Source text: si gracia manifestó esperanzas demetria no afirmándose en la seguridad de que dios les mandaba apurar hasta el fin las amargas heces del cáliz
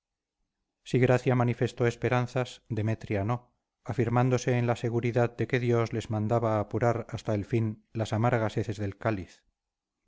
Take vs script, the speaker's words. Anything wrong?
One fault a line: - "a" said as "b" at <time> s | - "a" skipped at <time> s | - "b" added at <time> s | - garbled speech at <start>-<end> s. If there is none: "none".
none